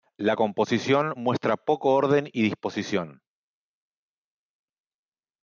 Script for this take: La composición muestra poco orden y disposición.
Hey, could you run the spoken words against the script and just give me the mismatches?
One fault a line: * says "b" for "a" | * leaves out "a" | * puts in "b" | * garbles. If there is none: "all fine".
all fine